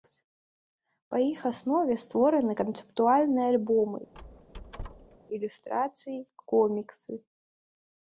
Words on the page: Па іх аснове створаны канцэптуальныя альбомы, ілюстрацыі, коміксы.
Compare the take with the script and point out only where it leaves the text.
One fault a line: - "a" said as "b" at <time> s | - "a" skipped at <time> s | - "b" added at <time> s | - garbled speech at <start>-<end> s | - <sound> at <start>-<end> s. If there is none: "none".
- squeak at 4.1-5.2 s